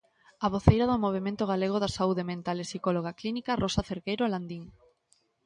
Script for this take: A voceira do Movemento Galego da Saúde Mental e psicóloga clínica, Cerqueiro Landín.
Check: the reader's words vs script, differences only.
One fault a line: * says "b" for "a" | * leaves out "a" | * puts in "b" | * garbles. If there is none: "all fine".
* puts in "Rosa"